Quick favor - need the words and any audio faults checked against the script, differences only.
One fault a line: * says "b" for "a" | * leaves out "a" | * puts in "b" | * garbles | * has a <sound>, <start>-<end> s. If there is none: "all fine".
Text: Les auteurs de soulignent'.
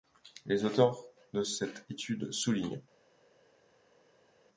* puts in "cette étude"